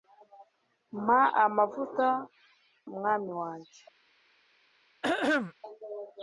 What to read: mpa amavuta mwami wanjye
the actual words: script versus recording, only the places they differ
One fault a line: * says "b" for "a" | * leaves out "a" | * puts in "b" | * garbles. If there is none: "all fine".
all fine